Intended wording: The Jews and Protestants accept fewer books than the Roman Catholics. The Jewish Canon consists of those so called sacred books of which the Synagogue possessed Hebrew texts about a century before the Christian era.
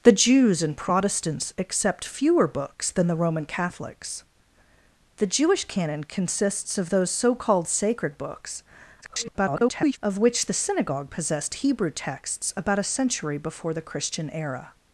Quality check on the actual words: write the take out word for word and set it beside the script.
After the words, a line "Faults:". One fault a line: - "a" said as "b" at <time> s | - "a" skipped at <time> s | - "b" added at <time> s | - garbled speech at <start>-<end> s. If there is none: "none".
The Jews and Protestants accept fewer books than the Roman Catholics. The Jewish Canon consists of those so called sacred books [garbled] of which the Synagogue possessed Hebrew texts about a century before the Christian era.
Faults:
- garbled speech at 9.0-10.0 s